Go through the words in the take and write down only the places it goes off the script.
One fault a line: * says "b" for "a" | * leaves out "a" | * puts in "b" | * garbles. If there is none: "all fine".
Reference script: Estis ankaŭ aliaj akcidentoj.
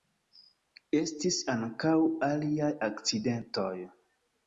all fine